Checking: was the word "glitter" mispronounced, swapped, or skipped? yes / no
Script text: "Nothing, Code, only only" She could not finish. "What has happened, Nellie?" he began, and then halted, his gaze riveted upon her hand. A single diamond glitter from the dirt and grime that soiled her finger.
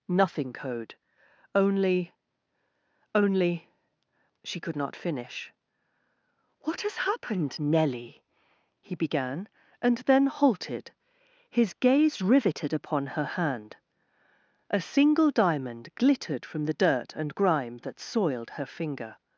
yes